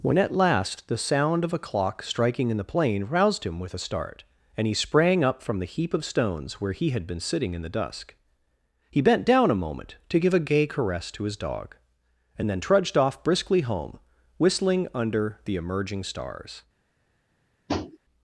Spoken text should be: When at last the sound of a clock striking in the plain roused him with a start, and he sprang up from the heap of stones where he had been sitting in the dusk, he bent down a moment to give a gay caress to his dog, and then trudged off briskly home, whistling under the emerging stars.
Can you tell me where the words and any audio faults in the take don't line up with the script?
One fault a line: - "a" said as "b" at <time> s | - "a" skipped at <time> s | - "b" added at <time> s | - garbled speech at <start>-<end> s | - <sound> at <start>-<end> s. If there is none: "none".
- tap at 17.7-18.0 s